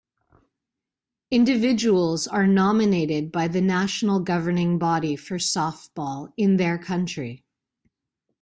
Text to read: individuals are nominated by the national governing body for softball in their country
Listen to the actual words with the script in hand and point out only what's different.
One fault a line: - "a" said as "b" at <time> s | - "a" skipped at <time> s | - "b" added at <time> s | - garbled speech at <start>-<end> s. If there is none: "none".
none